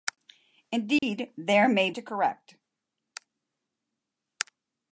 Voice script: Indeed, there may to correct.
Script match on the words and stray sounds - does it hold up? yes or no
no